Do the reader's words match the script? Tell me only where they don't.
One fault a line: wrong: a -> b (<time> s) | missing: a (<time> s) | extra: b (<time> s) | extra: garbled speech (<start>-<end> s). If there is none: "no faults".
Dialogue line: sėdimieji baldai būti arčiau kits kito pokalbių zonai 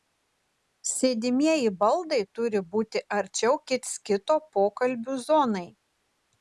extra: turi (2.4 s)